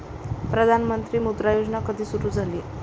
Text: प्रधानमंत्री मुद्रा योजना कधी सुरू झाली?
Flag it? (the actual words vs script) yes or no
no